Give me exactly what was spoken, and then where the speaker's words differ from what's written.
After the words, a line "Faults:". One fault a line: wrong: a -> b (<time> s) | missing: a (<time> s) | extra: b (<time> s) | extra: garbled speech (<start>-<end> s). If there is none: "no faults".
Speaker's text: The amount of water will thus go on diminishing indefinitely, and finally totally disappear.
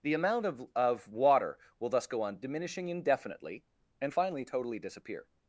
The amount of of water will thus go on diminishing indefinitely, and finally totally disappear.
Faults:
extra: of (0.7 s)